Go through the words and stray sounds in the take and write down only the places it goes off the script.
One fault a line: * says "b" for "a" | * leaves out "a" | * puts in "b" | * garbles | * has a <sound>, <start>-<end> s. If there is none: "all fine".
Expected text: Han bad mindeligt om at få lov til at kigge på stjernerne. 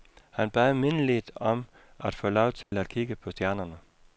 * has a dropout, 2.6-2.7 s